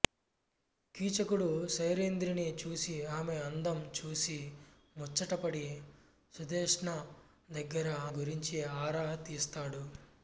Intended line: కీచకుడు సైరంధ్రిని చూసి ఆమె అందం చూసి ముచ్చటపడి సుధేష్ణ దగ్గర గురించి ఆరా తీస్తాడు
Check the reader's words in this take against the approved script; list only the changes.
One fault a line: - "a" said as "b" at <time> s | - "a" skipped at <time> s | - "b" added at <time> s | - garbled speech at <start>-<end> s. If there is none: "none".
none